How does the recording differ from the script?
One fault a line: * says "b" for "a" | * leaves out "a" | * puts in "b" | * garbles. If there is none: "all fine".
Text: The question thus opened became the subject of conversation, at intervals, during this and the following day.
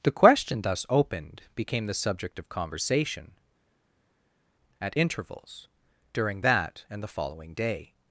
* says "that" for "this"